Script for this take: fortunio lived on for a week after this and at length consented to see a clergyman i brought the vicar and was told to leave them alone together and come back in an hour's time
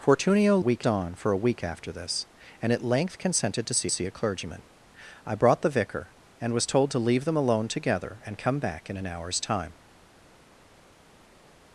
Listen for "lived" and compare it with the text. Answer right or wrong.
wrong